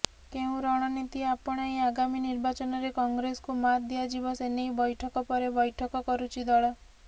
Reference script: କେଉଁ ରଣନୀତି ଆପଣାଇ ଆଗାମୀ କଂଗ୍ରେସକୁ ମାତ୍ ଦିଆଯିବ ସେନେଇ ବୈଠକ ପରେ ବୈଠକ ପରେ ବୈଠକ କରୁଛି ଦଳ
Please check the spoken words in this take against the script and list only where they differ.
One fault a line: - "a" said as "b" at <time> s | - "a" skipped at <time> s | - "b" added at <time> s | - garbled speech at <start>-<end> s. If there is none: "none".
- "ନିର୍ବାଚନରେ" added at 2.2 s
- "ପରେ ବୈଠକ" skipped at 6.1 s